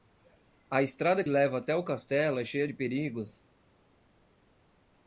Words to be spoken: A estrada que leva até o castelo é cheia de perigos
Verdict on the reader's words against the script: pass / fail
fail